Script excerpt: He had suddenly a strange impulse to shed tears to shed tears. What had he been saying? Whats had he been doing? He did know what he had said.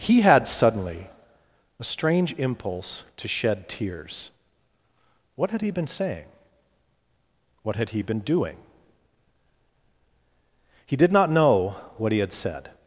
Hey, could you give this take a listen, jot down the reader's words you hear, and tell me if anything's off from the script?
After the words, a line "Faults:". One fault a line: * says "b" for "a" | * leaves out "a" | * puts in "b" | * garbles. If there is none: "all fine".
He had suddenly a strange impulse to shed tears. What had he been saying? What had he been doing? He did not know what he had said.
Faults:
* leaves out "to shed tears"
* says "What" for "Whats"
* puts in "not"